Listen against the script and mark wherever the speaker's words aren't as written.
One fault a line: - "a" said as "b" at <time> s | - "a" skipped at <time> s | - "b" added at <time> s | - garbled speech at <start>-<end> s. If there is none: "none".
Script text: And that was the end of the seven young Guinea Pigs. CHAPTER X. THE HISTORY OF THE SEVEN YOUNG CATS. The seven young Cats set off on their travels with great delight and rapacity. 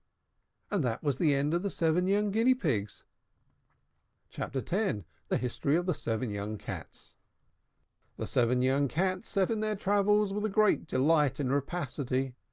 - "off" skipped at 9.5 s